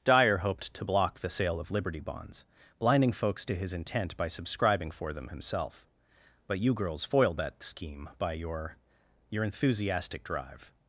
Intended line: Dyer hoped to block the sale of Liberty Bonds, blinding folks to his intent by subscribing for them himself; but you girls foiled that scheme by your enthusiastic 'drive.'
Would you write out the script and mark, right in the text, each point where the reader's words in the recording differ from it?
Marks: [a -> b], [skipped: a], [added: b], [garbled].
Dyer hoped to block the sale of Liberty Bonds, blinding folks to his intent by subscribing for them himself; but you girls foiled that scheme by your [added: your] enthusiastic 'drive.'